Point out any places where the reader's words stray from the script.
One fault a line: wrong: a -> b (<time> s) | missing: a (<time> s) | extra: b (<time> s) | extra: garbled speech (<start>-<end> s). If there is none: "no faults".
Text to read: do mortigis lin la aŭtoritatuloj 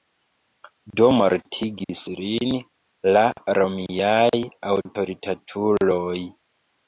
extra: romiaj (3.6 s)